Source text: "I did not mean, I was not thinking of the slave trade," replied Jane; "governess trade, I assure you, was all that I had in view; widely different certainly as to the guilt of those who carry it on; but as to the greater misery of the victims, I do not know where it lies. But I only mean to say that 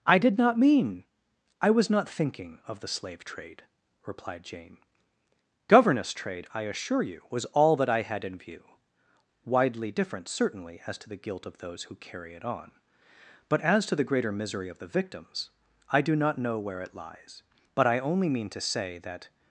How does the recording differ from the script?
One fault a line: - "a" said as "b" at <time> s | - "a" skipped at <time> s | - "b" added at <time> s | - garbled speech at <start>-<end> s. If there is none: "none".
none